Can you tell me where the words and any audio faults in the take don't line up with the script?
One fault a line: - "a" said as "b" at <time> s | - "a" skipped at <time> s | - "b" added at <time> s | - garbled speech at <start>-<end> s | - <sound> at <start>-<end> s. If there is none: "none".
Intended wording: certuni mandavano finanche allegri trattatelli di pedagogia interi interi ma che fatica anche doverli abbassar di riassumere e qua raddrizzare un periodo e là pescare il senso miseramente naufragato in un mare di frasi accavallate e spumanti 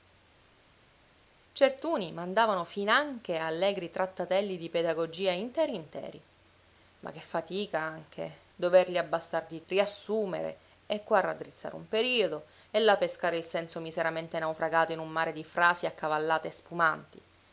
none